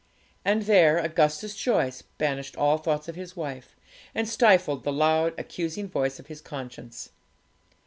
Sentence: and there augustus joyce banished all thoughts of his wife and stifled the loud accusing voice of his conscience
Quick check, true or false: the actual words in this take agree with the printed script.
true